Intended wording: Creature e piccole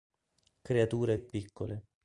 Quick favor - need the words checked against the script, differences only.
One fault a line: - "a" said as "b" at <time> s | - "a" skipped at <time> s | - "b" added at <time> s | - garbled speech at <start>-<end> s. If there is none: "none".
none